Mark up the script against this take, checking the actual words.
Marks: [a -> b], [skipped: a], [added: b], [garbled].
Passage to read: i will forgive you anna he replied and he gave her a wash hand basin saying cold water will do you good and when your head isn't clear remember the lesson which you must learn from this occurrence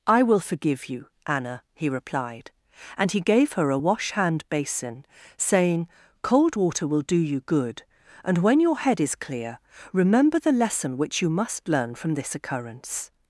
i will forgive you anna he replied and he gave her a wash hand basin saying cold water will do you good and when your head [isn't -> is] clear remember the lesson which you must learn from this occurrence